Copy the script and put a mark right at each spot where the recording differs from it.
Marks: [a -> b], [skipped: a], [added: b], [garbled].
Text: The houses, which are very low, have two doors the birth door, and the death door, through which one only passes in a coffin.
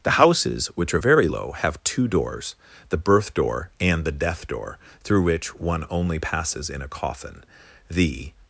The houses, which are very low, have two doors the birth door, and the death door, through which one only passes in a coffin. [added: The]